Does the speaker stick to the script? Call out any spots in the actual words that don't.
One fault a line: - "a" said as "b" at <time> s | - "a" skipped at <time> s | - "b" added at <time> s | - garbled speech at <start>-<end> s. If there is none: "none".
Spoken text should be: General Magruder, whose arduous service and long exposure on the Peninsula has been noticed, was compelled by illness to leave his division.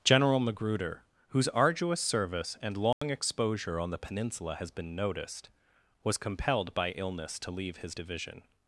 none